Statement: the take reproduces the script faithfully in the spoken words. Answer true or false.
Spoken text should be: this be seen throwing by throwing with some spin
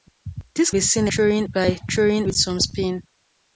true